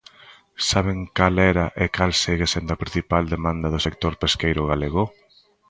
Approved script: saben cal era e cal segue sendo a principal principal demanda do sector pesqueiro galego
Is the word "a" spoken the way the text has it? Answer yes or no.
yes